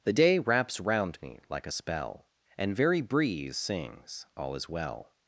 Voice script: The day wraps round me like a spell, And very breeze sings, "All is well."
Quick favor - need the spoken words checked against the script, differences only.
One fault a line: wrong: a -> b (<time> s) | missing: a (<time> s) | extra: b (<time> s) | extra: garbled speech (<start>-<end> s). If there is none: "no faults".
no faults